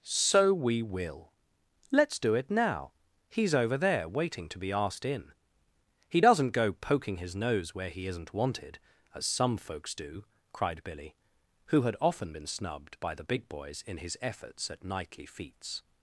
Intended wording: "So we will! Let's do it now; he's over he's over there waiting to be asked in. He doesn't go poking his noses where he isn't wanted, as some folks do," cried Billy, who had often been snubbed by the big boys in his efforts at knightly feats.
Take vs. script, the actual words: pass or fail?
fail